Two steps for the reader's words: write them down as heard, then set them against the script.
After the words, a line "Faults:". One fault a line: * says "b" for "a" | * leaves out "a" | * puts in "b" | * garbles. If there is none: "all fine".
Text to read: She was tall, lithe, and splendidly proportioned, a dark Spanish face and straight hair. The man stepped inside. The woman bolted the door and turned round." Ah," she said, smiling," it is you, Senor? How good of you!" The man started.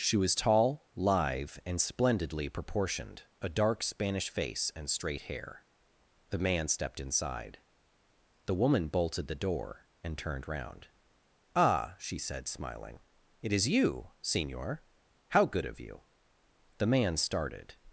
She was tall, lithe, and splendidly proportioned, a dark Spanish face and straight hair. The man stepped inside. The woman bolted the door and turned round." Ah," she said, smiling," it is you, Senor? How good of you!" The man started.
Faults:
all fine